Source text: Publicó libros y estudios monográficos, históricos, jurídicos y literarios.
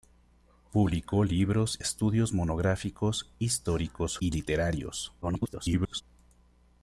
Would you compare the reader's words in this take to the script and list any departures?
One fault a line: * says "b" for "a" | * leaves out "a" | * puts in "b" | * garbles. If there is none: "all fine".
* leaves out "y"
* leaves out "jurídicos"
* garbles